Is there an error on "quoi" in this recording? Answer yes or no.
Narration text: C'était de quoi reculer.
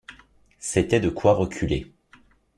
no